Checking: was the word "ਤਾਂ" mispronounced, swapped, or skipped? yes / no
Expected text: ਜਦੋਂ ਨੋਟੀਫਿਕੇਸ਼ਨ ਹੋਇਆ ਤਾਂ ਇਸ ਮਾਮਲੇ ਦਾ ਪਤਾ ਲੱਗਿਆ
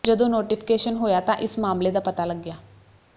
no